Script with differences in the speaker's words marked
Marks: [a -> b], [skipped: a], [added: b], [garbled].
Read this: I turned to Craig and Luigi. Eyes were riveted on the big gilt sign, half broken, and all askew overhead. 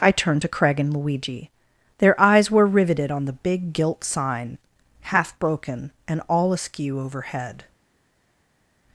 I turned to Craig and Luigi. [added: Their] Eyes were riveted on the big gilt sign, half broken, and all askew overhead.